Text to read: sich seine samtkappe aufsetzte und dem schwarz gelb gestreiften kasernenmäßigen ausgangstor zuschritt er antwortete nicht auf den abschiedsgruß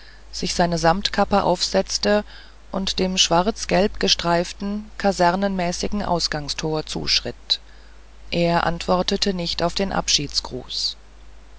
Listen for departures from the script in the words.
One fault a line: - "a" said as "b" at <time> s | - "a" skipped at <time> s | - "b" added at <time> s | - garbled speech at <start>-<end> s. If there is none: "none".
none